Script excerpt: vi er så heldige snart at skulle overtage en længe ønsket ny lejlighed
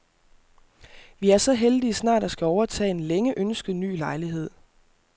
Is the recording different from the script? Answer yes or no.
no